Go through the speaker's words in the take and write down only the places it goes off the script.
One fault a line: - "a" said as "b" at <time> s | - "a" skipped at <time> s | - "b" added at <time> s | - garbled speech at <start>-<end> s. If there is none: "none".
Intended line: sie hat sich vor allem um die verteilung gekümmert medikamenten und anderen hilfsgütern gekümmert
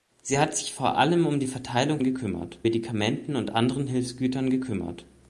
none